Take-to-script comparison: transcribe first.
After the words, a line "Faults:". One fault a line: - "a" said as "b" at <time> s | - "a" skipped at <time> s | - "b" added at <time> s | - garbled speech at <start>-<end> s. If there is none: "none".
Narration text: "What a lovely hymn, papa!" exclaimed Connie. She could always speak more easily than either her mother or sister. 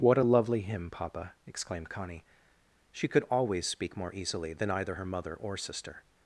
"What a lovely hymn, papa!" exclaimed Connie. She could always speak more easily than either her mother or sister.
Faults:
none